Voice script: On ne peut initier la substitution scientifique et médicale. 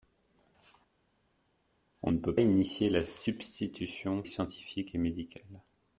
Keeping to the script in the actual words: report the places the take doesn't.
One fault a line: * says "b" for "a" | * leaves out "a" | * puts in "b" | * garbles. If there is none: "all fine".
all fine